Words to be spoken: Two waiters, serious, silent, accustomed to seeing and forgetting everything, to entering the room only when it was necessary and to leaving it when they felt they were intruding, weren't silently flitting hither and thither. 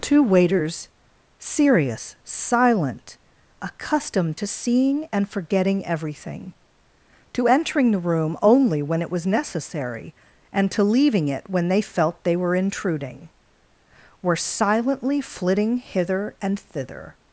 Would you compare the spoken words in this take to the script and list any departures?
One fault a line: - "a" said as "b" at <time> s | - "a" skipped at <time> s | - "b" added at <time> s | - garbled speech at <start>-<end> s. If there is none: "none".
- "weren't" said as "were" at 14.2 s